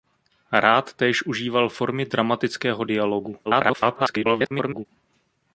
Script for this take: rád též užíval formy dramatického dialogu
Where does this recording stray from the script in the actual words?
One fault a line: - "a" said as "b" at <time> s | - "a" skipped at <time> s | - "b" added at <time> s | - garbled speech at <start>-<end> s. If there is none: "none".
- garbled speech at 3.4-4.9 s